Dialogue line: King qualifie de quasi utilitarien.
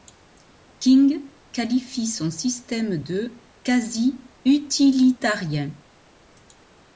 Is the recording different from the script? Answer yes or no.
yes